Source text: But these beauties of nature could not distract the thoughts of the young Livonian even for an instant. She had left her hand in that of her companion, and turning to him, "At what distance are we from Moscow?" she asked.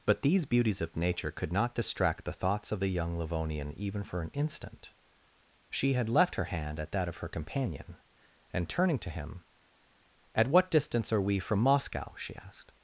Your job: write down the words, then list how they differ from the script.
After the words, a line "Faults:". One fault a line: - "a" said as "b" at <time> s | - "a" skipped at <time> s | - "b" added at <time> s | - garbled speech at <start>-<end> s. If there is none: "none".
But these beauties of nature could not distract the thoughts of the young Livonian even for an instant. She had left her hand at that of her companion, and turning to him, "At what distance are we from Moscow?" she asked.
Faults:
- "in" said as "at" at 6.8 s